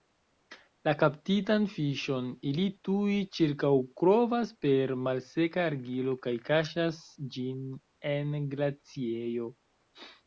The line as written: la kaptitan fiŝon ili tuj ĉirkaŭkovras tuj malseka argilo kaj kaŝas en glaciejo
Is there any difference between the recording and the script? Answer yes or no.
yes